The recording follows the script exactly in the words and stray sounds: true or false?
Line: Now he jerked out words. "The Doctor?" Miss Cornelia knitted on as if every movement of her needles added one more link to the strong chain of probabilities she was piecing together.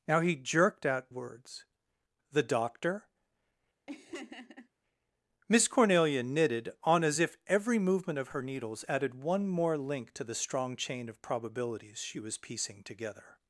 false